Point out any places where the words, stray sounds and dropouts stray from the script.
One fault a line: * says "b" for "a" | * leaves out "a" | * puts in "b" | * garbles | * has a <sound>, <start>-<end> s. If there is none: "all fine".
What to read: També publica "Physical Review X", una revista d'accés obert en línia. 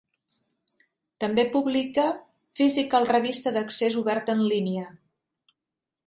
* leaves out "Review X una"